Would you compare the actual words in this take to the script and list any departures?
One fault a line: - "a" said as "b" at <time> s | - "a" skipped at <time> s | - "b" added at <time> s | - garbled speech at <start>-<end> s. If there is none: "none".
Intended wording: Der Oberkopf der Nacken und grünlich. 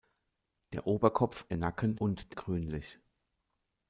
none